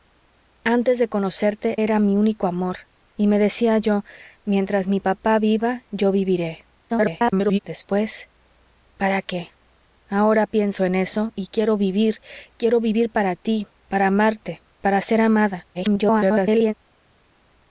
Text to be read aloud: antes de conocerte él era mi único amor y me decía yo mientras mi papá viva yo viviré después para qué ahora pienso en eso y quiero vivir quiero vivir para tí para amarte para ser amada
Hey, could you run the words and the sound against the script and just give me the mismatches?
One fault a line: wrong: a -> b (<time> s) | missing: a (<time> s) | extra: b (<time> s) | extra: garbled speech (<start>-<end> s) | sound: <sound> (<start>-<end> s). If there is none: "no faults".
missing: él (1.8 s)
extra: garbled speech (6.9-7.6 s)
extra: garbled speech (15.7-16.7 s)